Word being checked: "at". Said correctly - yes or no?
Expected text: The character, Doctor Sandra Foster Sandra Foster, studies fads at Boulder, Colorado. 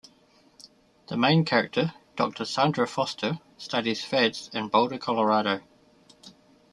no